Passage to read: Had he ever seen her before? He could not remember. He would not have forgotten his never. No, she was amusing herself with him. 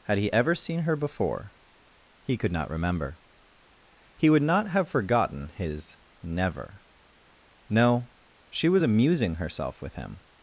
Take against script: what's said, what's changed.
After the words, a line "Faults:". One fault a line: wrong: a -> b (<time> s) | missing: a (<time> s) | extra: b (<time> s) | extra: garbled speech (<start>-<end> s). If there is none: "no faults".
Had he ever seen her before? He could not remember. He would not have forgotten his never. No, she was amusing herself with him.
Faults:
no faults